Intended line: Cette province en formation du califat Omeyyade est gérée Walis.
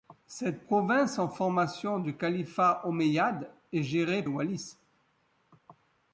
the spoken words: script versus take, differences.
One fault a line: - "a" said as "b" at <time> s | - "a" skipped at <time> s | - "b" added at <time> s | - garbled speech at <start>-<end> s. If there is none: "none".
none